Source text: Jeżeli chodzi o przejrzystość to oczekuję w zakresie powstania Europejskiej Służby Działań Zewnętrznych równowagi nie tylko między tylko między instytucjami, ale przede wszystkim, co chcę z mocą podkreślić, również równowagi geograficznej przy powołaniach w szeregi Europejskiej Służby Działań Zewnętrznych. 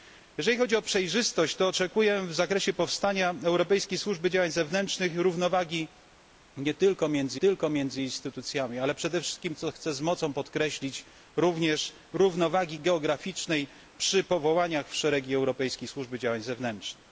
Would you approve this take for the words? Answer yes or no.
yes